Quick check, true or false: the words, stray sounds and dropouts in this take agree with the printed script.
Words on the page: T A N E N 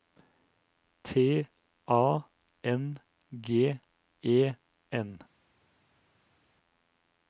false